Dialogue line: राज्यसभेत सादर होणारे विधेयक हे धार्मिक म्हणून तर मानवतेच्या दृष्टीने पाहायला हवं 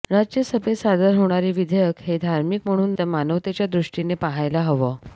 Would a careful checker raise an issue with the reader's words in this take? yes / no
no